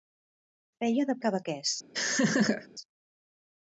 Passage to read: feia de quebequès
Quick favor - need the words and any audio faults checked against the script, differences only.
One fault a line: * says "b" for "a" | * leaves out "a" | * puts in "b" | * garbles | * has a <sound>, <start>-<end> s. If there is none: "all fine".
* has a laugh, 1.9-2.7 s